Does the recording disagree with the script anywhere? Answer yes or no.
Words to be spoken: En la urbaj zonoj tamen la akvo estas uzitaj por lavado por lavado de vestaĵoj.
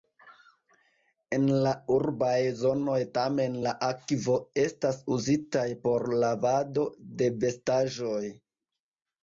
yes